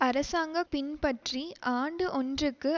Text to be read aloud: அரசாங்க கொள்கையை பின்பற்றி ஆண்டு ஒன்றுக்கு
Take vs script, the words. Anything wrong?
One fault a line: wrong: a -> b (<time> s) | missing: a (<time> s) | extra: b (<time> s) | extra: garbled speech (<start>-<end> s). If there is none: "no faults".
missing: கொள்கையை (0.6 s)